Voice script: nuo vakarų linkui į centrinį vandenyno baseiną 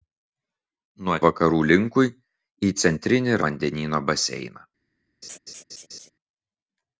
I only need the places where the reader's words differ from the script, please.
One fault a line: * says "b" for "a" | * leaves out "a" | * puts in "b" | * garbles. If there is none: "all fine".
all fine